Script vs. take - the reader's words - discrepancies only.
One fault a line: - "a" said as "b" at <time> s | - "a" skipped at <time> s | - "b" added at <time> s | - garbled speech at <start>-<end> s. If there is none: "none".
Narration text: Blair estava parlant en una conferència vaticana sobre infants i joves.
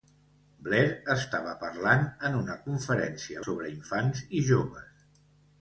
- "vaticana" skipped at 3.5 s